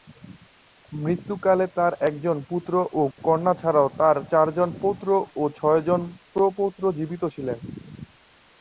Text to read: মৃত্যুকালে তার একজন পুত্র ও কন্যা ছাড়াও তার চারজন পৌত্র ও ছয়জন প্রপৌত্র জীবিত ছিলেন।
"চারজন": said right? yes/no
yes